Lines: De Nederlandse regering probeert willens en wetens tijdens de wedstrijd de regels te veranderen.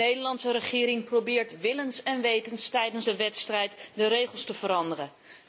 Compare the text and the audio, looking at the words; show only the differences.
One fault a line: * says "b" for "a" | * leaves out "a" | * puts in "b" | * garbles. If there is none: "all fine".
all fine